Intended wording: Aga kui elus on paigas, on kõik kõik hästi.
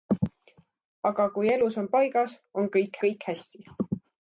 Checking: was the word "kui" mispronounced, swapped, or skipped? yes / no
no